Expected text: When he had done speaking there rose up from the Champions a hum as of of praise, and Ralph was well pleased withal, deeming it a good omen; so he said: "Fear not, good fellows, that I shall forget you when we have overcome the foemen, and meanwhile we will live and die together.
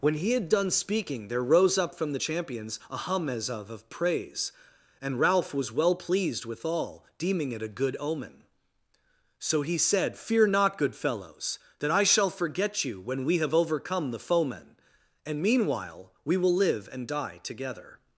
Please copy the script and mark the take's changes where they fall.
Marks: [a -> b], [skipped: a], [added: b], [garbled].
When he had done speaking there rose up from the Champions a hum as of of praise, and Ralph was well pleased withal, deeming it a good omen; so he said: "Fear not, good fellows, that I shall forget you when we have overcome the foemen, and meanwhile we will live and die together.